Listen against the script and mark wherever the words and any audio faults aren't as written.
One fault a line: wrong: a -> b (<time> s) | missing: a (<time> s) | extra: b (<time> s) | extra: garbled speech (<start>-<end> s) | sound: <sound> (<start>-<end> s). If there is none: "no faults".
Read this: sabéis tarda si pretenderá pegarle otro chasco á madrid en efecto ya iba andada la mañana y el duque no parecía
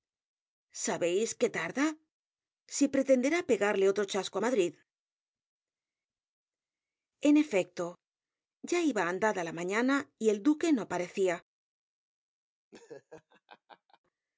extra: que (1.4 s)
sound: laugh (12.7-14.0 s)